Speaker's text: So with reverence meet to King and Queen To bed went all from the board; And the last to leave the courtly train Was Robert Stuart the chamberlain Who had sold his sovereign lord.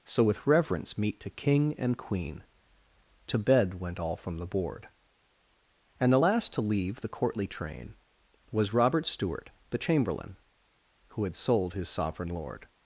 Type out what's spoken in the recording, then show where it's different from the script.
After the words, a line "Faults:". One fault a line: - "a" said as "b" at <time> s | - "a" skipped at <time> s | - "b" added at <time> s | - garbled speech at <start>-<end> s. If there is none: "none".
So with reverence meet to King and Queen To bed went all from the board; And the last to leave the courtly train Was Robert Stuart the chamberlain Who had sold his sovereign lord.
Faults:
none